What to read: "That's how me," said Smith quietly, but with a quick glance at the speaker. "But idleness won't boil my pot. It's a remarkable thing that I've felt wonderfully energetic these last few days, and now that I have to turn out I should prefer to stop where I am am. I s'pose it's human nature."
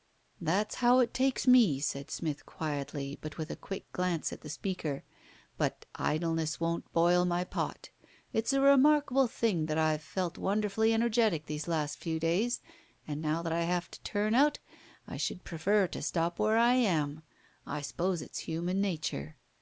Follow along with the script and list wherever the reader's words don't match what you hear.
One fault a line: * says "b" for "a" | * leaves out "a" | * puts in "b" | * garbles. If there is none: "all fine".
* puts in "it takes"
* leaves out "am"